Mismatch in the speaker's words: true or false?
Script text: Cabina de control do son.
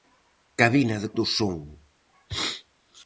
true